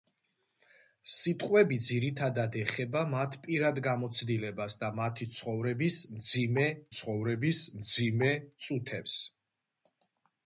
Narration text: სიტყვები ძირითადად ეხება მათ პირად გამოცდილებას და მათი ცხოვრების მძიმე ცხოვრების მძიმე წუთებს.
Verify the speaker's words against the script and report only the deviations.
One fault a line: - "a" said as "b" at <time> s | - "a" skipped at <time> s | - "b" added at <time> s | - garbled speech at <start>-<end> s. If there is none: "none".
none